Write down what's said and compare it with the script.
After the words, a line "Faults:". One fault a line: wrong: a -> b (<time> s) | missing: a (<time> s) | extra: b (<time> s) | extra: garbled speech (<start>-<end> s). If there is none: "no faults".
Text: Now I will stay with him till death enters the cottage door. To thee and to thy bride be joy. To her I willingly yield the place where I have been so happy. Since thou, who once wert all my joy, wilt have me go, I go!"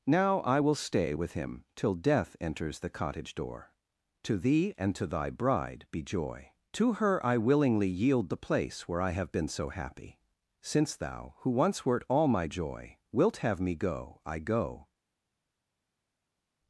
Now I will stay with him till death enters the cottage door. To thee and to thy bride be joy. To her I willingly yield the place where I have been so happy. Since thou, who once wert all my joy, wilt have me go, I go!"
Faults:
no faults